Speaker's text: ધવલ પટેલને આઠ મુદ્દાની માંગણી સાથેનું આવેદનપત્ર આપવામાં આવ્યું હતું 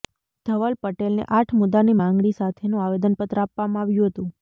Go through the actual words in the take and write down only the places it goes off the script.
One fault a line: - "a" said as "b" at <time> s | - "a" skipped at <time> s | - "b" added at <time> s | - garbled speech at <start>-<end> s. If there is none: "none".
none